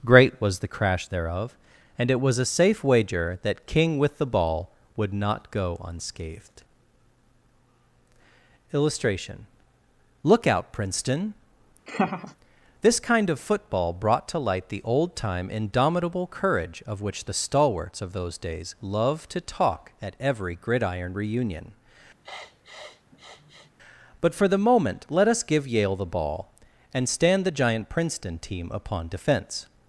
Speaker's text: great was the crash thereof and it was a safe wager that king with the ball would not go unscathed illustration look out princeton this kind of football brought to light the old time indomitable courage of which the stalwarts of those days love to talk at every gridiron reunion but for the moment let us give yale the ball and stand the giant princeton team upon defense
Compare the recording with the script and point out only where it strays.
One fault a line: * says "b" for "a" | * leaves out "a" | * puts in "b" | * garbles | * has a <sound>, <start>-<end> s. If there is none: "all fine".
* has a laugh, 11.9-12.4 s
* has a sniff, 22.2-23.7 s